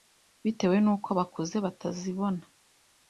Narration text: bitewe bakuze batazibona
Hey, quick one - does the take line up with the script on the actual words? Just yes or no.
no